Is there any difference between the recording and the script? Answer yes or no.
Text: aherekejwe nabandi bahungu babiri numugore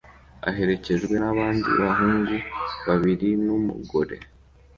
no